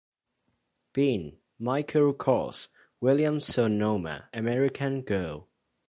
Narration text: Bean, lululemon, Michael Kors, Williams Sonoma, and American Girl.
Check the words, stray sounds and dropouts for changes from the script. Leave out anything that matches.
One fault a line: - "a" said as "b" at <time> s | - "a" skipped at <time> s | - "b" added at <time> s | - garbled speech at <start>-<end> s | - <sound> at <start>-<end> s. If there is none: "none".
- "lululemon" skipped at 1.4 s
- "and" skipped at 4.2 s